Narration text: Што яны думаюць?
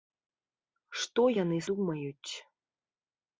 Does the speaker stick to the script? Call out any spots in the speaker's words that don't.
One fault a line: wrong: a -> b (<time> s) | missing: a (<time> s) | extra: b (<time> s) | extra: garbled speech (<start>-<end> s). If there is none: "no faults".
no faults